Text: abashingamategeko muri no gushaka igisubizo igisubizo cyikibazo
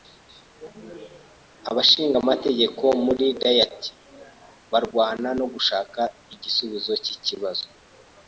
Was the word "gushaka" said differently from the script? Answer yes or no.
no